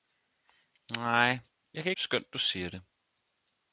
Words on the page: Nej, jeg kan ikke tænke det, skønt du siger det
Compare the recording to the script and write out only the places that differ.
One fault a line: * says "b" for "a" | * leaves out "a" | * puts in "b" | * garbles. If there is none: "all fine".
* leaves out "ikke tænke det"